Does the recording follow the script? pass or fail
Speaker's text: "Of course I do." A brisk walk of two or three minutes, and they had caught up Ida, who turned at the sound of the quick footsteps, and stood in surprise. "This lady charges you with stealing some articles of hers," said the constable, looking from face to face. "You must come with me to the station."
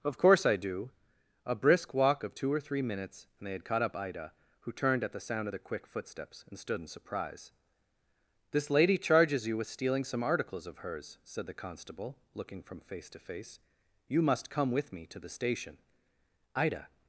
fail